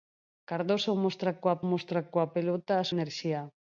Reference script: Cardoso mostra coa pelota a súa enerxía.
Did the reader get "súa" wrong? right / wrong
wrong